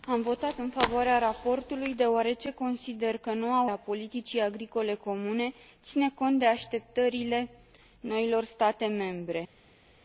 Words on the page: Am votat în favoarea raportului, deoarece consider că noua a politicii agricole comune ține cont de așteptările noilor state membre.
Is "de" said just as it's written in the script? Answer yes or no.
yes